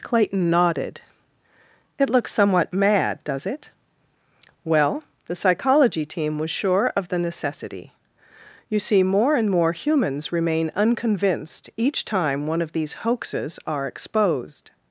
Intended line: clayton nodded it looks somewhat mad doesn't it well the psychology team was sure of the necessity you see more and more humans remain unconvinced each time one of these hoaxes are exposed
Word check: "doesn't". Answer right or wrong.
wrong